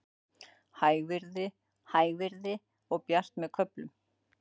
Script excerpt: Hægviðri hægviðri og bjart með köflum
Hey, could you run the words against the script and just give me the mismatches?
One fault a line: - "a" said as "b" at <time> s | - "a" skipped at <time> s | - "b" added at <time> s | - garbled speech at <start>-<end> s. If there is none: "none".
none